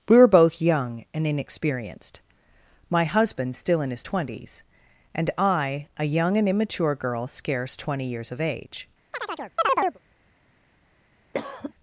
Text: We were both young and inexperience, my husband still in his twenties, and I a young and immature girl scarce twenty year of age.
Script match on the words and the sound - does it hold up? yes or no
no